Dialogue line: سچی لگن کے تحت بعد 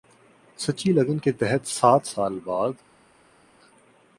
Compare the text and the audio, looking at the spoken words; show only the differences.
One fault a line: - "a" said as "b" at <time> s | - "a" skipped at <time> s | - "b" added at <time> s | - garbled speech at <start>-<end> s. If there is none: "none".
- "سات سال" added at 1.7 s